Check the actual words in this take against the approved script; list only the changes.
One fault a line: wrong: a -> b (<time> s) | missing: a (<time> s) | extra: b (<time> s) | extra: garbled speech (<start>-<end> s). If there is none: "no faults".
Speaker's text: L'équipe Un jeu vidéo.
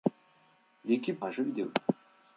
no faults